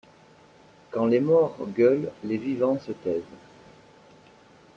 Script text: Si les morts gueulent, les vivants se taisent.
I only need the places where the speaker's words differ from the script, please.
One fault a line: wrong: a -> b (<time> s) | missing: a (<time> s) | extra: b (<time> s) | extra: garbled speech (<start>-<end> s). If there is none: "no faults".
wrong: Si -> Quand (0.9 s)